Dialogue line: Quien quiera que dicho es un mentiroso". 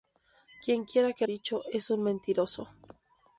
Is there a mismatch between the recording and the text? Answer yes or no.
no